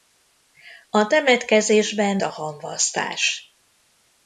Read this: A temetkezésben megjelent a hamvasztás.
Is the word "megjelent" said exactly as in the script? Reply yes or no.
no